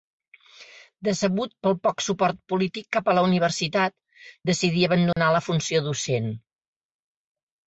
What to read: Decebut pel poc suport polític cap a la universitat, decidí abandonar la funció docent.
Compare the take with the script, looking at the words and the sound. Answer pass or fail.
fail